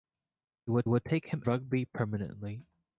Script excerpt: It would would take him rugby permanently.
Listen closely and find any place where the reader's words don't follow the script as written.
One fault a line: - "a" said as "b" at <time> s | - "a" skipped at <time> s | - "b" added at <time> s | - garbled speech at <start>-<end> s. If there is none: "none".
none